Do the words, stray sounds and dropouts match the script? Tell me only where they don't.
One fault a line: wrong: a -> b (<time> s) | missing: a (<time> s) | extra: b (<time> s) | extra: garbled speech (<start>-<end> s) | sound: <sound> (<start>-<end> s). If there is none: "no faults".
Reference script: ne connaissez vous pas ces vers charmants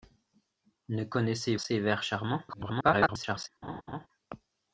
missing: vous pas (1.6 s)
extra: garbled speech (2.5-3.5 s)
sound: laugh (3.6-4.1 s)